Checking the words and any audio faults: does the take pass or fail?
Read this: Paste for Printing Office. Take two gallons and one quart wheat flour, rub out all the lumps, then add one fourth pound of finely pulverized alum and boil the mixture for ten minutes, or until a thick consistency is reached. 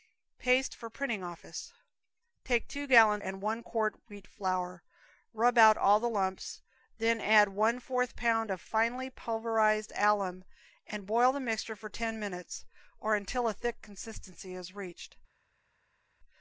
pass